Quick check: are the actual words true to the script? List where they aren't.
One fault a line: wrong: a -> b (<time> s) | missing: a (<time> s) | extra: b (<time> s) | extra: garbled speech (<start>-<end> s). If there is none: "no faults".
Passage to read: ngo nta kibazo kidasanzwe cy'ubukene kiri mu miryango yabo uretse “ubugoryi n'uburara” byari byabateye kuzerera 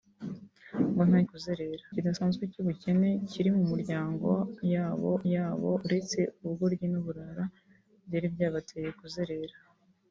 wrong: kibazo -> kuzerera (1.3 s)
extra: yabo (5.3 s)